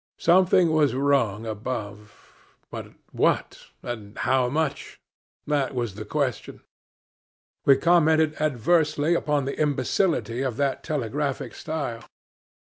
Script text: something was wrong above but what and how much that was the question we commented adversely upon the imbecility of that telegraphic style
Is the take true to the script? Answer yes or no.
yes